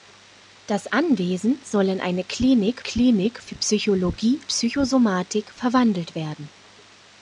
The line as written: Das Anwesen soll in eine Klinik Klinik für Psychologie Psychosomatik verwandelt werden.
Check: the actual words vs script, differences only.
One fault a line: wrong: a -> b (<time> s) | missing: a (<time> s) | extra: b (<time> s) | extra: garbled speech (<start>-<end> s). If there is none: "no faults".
no faults